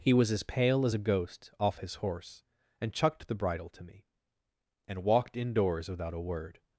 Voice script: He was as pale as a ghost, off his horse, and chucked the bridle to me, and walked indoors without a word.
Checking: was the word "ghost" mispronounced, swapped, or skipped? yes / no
no